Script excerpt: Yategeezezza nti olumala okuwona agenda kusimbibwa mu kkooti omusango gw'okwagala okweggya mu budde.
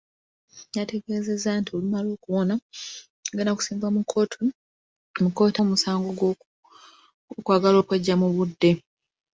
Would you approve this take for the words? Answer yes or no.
yes